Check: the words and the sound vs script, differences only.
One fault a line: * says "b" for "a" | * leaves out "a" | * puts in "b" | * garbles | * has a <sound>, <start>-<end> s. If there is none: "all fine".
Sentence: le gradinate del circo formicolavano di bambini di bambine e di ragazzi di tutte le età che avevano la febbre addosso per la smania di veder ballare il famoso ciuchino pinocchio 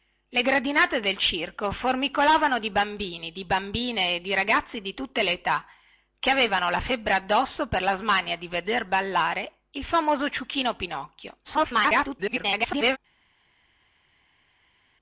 * garbles